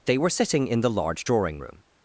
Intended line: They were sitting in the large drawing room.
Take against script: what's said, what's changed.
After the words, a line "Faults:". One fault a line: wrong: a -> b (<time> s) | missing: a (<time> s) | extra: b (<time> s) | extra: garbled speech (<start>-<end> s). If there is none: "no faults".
They were sitting in the large drawing room.
Faults:
no faults